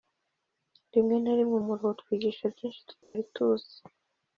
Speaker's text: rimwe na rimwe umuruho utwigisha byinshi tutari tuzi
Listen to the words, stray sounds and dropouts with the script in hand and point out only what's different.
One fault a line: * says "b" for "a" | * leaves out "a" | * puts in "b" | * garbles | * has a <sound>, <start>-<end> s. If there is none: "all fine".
* has a dropout, 3.0-3.2 s